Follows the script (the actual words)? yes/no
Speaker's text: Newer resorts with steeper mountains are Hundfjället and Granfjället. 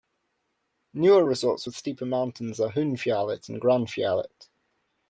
yes